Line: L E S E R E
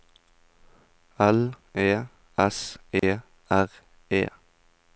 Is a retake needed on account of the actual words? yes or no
no